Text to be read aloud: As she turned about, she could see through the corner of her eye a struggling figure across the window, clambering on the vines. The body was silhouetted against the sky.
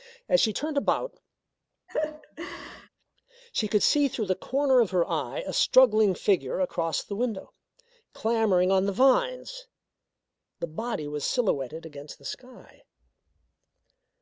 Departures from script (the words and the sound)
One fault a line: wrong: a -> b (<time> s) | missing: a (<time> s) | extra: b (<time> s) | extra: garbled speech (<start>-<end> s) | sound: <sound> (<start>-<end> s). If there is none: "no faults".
sound: laugh (1.9-2.9 s)